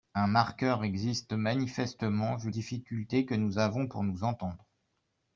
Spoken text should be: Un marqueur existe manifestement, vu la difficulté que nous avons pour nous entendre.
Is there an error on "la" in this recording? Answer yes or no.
yes